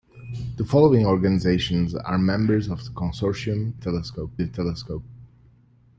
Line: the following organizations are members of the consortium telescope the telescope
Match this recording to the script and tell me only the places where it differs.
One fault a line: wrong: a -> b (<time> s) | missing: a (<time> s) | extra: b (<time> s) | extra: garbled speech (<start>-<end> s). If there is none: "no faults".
no faults